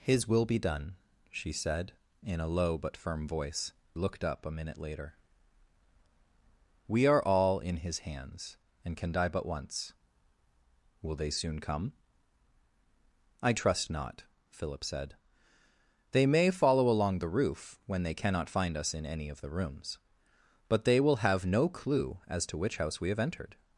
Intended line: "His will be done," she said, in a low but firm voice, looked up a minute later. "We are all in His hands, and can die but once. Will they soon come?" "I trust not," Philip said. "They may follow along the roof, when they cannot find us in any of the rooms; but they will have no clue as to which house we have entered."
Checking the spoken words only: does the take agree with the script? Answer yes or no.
yes